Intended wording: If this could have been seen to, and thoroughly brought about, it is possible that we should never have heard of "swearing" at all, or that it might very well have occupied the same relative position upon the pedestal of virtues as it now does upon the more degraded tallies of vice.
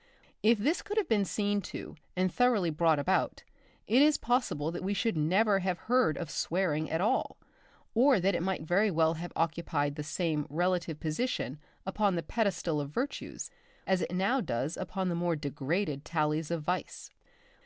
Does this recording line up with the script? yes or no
yes